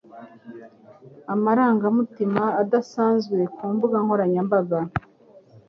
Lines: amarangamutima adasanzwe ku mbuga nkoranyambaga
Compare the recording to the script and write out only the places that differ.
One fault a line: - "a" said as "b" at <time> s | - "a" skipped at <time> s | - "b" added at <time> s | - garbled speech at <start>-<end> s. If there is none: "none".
none